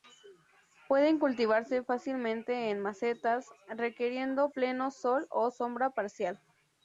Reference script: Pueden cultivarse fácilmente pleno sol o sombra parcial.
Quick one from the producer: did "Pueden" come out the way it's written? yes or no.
yes